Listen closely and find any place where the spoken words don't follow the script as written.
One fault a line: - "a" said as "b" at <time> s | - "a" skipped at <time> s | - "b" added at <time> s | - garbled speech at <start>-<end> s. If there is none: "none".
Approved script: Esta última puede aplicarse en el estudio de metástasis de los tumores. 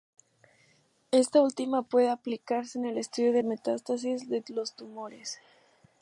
none